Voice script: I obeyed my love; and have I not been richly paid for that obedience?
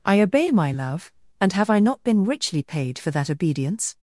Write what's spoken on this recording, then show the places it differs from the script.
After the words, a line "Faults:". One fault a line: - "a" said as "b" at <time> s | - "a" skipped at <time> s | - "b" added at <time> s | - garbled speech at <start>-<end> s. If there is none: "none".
I obey my love; and have I not been richly paid for that obedience?
Faults:
- "obeyed" said as "obey" at 0.2 s